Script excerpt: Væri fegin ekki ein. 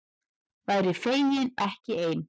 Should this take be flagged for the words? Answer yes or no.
no